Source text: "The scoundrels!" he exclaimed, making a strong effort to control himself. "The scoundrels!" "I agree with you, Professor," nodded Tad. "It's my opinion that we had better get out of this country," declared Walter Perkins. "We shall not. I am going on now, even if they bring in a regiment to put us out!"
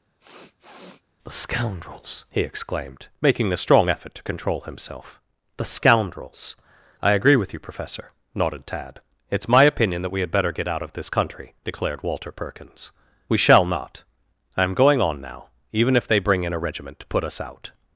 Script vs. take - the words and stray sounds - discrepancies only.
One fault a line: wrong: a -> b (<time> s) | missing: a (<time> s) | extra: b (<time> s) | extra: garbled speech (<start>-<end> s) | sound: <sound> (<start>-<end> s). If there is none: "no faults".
sound: sniff (0.2-1.0 s)